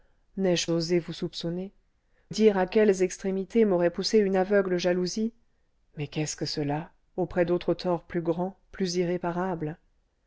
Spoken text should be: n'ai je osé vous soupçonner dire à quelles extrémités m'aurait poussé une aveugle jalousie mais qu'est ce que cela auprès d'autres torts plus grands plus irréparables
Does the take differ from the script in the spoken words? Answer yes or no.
no